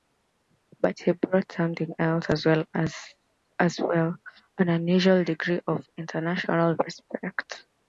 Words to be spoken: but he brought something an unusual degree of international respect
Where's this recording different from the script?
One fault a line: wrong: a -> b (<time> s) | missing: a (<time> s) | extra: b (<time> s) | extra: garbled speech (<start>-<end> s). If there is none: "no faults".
extra: else as well (2.0 s)